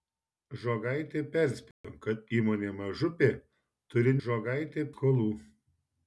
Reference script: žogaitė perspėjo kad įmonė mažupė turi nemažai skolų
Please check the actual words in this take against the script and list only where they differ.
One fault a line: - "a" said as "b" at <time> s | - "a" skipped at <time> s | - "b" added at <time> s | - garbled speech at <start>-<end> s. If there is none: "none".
- "nemažai" said as "žogaitė" at 4.2 s